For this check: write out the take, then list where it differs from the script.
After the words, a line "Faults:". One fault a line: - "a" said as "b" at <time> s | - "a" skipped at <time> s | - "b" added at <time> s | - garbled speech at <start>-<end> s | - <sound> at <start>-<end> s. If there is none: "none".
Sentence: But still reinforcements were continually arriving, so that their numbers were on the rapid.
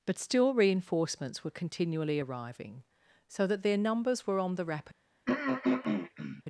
But still reinforcements were continually arriving, so that their numbers were on the rapid.
Faults:
- throat clearing at 5.3-6.4 s